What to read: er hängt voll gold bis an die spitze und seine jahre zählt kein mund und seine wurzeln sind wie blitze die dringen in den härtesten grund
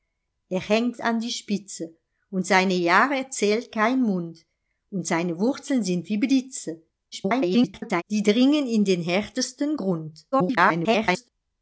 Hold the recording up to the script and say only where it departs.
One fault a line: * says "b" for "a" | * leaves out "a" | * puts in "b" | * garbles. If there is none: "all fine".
* leaves out "voll gold bis"
* garbles
* garbles